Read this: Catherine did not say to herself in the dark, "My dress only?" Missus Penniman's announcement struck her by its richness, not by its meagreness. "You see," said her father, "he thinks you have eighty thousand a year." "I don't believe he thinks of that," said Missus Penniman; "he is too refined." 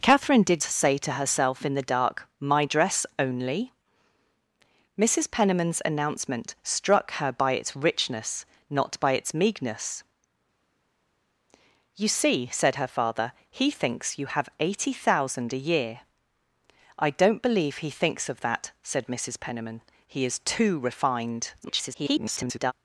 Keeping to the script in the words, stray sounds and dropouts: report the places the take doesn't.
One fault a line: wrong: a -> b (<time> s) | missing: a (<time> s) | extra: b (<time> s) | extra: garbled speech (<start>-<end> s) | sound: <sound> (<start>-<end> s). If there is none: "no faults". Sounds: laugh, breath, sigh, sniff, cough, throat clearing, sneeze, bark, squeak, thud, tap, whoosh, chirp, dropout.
missing: not (0.6 s)
extra: garbled speech (21.6-22.7 s)